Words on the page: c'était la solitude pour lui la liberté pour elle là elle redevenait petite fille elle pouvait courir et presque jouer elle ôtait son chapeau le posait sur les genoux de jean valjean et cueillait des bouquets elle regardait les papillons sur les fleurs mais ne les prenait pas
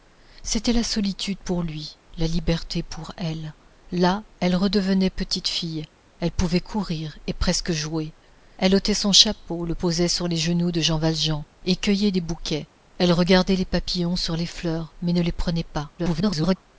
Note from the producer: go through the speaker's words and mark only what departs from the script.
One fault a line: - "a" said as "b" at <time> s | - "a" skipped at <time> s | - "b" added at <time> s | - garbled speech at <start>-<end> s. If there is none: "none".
- garbled speech at 16.0-16.6 s